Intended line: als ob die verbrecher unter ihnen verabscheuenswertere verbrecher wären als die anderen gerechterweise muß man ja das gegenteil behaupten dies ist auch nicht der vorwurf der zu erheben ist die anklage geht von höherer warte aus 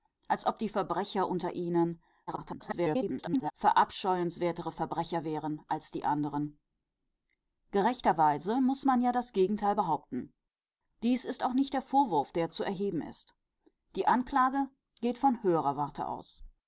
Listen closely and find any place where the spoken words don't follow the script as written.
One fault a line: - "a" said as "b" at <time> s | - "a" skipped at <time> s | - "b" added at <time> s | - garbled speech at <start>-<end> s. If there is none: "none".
- garbled speech at 2.3-3.5 s